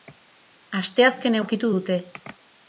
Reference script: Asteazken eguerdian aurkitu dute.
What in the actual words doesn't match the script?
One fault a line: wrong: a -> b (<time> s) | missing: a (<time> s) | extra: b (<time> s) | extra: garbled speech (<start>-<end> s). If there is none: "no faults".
missing: eguerdian (1.4 s)